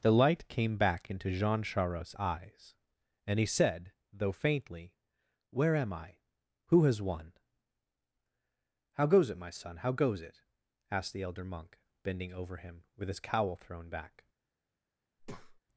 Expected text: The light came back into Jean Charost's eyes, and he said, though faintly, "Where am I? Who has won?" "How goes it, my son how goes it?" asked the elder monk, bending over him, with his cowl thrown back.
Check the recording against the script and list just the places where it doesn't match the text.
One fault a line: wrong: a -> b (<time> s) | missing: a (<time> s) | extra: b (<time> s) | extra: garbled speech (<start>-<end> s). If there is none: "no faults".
no faults